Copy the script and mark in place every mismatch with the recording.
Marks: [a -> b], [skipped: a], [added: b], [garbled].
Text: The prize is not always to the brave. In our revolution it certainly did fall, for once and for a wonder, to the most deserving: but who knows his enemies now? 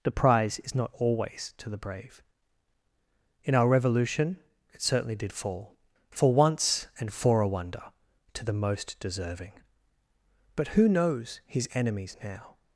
The prize is not always to the brave. In our revolution it certainly did fall, for once and for a wonder, to the most deserving: but who knows his enemies now?